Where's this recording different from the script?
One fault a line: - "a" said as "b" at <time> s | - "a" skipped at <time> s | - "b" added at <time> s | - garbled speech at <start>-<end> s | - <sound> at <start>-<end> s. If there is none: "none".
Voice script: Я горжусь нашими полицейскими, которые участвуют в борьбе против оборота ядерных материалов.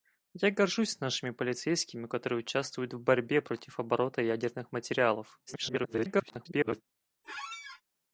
- garbled speech at 5.5-6.8 s
- squeak at 7.2-7.8 s